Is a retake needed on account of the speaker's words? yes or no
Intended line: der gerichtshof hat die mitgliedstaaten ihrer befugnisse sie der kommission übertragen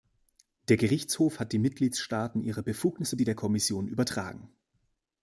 no